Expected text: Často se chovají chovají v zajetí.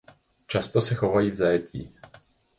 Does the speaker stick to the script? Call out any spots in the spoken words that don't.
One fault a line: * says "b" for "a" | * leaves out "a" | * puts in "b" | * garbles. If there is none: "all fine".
* leaves out "chovají"